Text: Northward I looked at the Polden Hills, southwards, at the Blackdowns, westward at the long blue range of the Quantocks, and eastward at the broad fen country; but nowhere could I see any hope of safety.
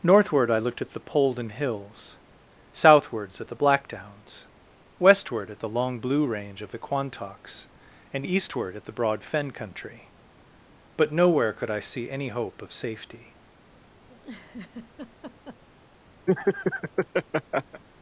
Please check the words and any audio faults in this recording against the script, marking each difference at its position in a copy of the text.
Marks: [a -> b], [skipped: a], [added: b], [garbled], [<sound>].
Northward I looked at the Polden Hills, southwards, at the Blackdowns, westward at the long blue range of the Quantocks, and eastward at the broad fen country; but nowhere could I see any hope of safety. [laugh] [laugh]